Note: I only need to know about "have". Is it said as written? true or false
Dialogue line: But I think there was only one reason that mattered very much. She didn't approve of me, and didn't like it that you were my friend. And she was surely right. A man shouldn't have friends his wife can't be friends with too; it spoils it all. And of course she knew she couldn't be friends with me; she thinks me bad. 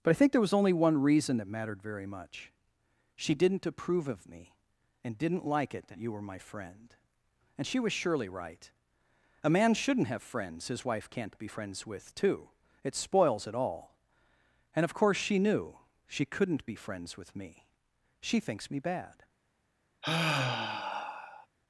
true